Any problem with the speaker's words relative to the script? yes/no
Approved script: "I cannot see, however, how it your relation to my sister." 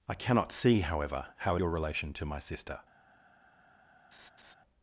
no